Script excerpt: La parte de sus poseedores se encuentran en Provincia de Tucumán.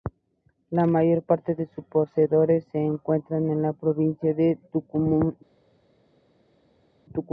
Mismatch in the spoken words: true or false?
true